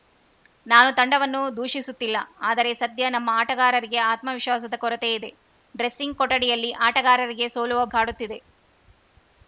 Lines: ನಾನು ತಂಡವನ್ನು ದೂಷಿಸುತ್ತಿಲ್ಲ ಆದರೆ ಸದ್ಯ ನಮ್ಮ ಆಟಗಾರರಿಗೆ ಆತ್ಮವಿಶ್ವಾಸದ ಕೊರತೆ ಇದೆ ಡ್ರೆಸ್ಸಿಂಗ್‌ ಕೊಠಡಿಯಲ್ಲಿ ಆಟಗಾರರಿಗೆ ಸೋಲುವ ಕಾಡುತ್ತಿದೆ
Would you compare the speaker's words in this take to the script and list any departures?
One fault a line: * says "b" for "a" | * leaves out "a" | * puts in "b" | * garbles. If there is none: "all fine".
all fine